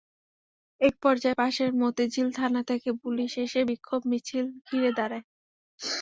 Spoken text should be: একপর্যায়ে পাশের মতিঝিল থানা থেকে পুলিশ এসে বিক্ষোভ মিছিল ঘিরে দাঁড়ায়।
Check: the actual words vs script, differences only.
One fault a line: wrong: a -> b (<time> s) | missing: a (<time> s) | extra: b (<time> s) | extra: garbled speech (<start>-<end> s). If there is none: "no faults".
no faults